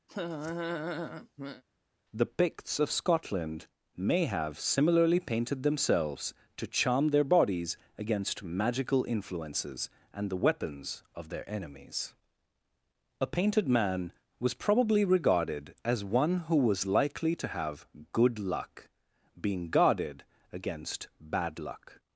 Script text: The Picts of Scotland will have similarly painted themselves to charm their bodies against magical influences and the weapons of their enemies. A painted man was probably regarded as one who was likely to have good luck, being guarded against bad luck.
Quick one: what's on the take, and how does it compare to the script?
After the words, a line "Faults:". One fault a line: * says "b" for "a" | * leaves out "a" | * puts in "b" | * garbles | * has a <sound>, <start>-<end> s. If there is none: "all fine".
The Picts of Scotland may have similarly painted themselves to charm their bodies against magical influences and the weapons of their enemies. A painted man was probably regarded as one who was likely to have good luck, being guarded against bad luck.
Faults:
* has a laugh, 0.1-1.6 s
* says "may" for "will"